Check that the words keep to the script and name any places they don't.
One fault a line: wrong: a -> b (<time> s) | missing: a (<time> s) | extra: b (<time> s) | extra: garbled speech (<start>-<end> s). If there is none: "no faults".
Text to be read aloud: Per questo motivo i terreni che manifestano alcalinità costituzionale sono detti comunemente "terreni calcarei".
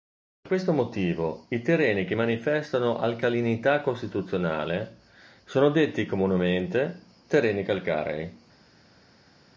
no faults